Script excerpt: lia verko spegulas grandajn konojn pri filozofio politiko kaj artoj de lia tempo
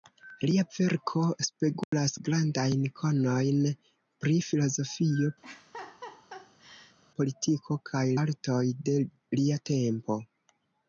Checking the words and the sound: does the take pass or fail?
fail